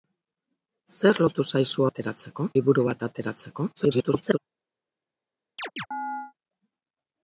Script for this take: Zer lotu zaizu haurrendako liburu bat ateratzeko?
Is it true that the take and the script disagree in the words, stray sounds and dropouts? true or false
true